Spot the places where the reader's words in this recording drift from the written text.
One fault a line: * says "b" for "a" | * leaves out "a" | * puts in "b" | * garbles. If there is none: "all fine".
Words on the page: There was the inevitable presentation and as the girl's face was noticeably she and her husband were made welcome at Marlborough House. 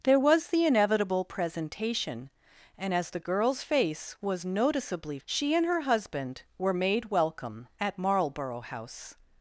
all fine